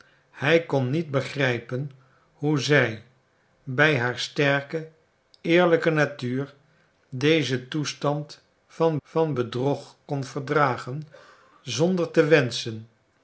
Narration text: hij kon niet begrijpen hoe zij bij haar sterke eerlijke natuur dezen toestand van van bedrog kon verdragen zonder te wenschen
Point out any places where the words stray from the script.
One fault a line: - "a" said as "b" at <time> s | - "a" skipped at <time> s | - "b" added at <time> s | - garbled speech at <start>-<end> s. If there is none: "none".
none